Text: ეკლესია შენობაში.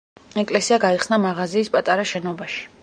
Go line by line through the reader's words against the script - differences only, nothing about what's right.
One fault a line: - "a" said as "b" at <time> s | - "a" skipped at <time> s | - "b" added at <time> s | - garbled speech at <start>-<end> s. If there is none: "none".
- "გაიხსნა მაღაზიის პატარა" added at 0.8 s